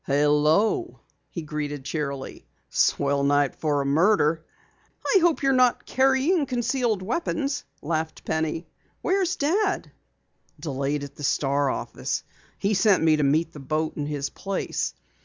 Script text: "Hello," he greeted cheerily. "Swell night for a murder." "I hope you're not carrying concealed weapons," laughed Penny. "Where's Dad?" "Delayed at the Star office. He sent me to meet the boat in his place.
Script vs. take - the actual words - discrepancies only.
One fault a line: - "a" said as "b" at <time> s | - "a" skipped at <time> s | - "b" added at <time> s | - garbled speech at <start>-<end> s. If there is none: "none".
none